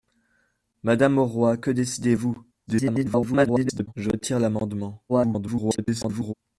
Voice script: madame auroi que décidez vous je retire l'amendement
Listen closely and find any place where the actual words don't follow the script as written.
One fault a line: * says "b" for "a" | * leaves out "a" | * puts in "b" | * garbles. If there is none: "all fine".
* garbles
* garbles